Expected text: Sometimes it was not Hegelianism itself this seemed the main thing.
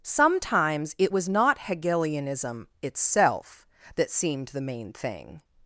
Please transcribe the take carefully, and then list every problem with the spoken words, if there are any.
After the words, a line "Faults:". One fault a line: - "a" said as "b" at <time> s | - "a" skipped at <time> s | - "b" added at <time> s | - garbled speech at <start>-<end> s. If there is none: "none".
Sometimes it was not Hegelianism itself that seemed the main thing.
Faults:
- "this" said as "that" at 3.9 s